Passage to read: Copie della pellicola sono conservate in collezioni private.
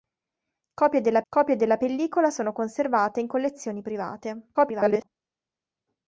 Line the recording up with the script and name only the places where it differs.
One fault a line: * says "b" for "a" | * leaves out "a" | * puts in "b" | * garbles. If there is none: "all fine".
* puts in "copie della"
* garbles